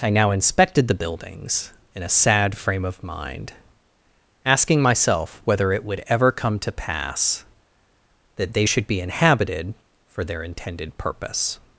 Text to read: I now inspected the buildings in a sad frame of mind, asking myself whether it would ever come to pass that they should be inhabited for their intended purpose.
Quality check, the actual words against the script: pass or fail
pass